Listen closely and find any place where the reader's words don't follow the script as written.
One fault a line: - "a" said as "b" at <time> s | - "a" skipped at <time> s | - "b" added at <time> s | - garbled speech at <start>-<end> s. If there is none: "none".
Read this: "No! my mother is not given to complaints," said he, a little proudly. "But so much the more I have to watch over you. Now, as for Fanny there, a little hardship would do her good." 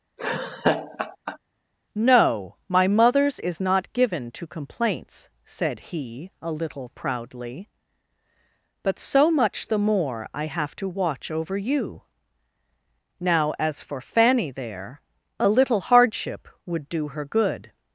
- "mother" said as "mothers" at 2.9 s